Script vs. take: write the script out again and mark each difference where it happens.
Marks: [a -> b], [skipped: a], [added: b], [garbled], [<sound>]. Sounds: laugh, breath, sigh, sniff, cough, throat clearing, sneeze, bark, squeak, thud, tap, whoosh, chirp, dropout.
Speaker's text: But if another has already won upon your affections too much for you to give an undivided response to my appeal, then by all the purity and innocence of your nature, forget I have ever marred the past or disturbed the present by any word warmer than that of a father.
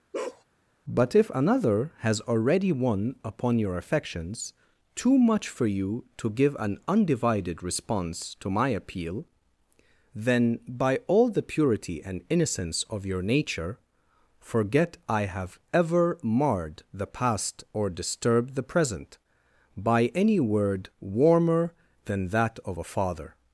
[bark] But if another has already won upon your affections too much for you to give an undivided response to my appeal, then by all the purity and innocence of your nature, forget I have ever marred the past or disturbed the present by any word warmer than that of a father.